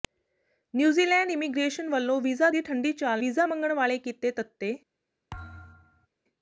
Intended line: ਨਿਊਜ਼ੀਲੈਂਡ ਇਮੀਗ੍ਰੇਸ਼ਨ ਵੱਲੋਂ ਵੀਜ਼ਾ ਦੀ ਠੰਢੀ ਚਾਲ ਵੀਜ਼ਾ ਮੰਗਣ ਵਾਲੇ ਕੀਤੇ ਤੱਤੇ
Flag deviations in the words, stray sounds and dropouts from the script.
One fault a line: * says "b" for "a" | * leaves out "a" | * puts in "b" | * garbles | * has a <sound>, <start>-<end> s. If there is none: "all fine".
* has a thud, 5.3-6.1 s